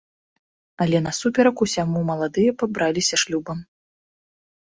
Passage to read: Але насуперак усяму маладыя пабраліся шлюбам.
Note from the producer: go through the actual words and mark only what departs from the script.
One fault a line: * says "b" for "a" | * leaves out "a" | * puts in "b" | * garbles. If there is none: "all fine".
all fine